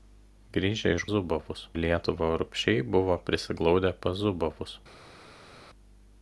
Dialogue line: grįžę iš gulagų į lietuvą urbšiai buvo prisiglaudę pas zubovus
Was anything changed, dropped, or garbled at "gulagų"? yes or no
yes